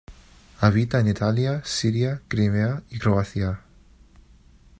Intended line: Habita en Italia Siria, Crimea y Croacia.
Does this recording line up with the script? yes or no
yes